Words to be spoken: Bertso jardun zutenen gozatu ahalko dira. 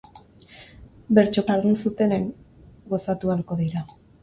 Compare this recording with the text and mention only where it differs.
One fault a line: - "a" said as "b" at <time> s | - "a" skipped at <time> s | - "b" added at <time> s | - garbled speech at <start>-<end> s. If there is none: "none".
none